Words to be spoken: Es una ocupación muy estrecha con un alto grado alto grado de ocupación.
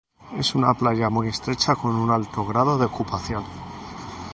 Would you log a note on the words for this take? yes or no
yes